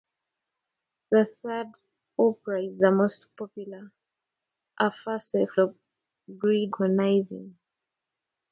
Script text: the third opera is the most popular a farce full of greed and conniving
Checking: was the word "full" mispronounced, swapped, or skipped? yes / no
yes